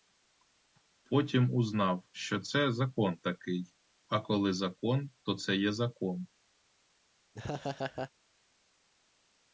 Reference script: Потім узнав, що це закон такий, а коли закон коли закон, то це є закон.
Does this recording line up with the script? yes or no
no